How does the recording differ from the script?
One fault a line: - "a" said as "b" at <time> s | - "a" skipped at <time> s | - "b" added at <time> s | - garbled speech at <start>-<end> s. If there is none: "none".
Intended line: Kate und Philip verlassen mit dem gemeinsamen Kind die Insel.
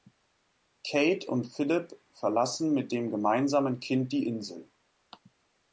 none